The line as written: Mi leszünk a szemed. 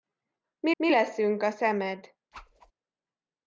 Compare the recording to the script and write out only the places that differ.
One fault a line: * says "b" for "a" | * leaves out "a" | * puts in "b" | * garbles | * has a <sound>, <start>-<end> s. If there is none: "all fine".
* puts in "mi"
* has a whoosh, 2.3-2.7 s